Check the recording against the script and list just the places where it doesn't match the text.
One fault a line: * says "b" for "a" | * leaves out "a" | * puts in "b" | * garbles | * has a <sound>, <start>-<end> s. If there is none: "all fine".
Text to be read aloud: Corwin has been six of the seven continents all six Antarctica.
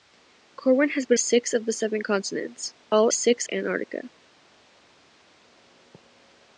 all fine